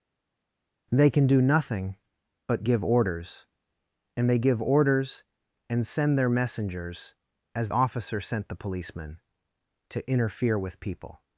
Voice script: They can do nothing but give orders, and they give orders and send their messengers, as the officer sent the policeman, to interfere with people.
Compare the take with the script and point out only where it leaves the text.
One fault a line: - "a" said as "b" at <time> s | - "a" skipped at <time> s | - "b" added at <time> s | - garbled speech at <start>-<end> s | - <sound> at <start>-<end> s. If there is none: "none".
- "the" skipped at 7.7 s